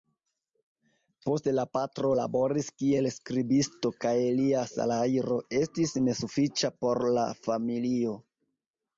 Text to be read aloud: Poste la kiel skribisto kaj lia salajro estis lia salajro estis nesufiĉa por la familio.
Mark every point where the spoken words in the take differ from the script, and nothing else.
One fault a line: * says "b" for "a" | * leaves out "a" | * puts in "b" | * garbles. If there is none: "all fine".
* puts in "patro laboris"
* leaves out "lia salajro estis"